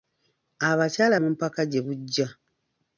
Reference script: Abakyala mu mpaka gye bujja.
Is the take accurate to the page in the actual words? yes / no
yes